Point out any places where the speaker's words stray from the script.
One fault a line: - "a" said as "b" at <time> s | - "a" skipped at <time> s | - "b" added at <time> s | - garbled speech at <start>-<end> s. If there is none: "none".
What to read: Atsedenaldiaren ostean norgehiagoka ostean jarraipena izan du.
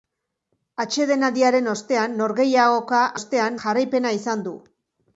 none